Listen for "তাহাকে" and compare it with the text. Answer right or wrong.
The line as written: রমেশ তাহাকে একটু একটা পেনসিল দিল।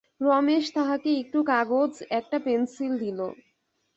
right